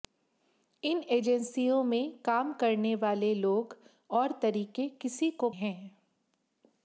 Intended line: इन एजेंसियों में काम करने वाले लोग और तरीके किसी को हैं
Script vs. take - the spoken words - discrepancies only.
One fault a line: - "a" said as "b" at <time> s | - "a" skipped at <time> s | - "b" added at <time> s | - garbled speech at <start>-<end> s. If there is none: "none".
none